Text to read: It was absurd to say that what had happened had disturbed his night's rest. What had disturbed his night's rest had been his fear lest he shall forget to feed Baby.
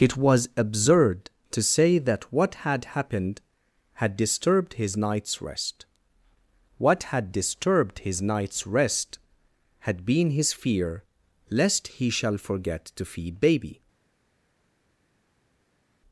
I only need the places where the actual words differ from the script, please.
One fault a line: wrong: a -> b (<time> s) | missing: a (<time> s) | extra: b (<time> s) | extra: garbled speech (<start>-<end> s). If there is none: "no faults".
no faults